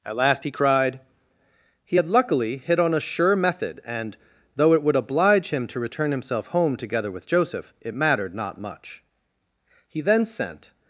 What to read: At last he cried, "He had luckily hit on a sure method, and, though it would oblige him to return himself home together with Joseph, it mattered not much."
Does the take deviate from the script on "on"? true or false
false